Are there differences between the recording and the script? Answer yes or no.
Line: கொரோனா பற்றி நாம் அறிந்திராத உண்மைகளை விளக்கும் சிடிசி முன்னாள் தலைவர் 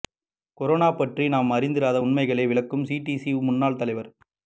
no